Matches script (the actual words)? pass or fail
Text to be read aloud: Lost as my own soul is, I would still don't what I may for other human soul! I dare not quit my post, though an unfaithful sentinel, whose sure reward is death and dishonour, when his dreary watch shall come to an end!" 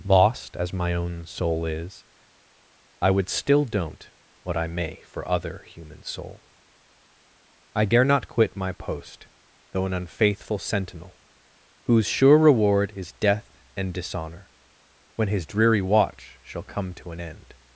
pass